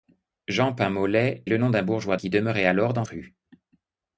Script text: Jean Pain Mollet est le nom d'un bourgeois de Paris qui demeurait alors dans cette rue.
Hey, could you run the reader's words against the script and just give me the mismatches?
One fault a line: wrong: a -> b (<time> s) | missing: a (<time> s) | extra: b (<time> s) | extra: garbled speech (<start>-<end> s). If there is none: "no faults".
missing: est (1.4 s)
missing: de Paris (2.2 s)
missing: cette (3.0 s)